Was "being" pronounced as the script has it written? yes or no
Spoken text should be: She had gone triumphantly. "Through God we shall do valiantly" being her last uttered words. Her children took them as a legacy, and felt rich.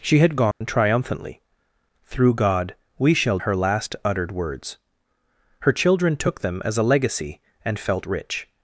no